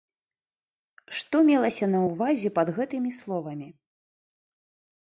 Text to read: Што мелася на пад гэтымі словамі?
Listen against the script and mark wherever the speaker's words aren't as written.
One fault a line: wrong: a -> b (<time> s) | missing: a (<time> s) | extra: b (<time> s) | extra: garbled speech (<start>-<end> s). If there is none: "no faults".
extra: ўвазе (2.1 s)